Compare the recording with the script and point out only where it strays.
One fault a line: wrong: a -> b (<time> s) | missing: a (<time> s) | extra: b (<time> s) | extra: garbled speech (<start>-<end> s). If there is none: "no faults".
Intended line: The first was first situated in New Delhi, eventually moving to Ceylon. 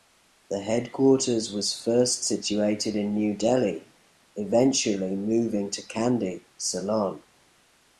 wrong: first -> headquarters (0.6 s)
extra: Kandy (5.8 s)